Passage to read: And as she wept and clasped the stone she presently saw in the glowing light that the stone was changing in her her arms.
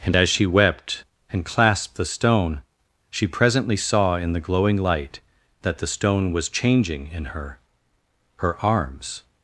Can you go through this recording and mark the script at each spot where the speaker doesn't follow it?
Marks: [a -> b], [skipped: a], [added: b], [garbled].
And as she wept and clasped the stone she presently saw in the glowing light that the stone was changing in her her arms.